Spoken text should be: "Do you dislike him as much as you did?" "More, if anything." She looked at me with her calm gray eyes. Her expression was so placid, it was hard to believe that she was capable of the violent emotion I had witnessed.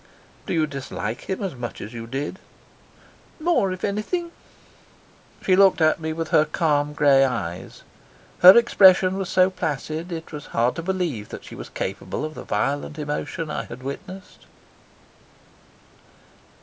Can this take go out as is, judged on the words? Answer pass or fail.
pass